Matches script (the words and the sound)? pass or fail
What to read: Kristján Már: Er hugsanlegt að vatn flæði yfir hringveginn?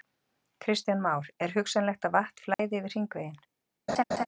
fail